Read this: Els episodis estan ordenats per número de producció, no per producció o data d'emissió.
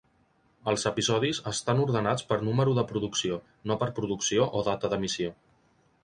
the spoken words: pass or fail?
pass